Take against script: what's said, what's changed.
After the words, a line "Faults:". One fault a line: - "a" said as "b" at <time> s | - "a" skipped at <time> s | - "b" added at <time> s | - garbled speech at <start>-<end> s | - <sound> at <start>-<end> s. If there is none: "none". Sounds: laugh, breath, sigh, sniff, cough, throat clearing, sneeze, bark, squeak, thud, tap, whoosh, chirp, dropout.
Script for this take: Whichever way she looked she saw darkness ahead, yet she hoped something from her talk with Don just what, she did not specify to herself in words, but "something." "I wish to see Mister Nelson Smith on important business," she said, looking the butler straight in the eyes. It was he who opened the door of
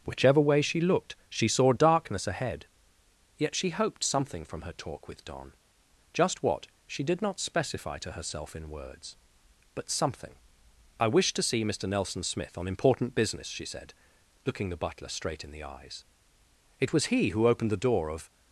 Whichever way she looked she saw darkness ahead, yet she hoped something from her talk with Don just what, she did not specify to herself in words, but "something." "I wish to see Mister Nelson Smith on important business," she said, looking the butler straight in the eyes. It was he who opened the door of
Faults:
none